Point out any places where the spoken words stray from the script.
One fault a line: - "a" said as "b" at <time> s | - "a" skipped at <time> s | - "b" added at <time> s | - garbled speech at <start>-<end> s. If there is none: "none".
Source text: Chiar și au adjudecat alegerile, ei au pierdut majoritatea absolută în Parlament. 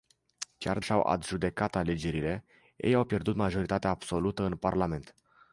none